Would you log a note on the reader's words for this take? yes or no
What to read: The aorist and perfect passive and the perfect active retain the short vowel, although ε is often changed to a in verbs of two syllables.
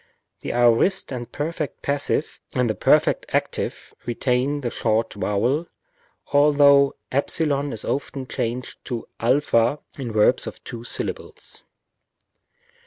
no